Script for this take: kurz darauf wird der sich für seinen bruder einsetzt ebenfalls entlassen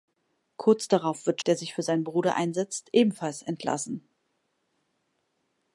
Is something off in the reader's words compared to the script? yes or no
no